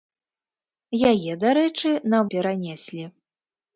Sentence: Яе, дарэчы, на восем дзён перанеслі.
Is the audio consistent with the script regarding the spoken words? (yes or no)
no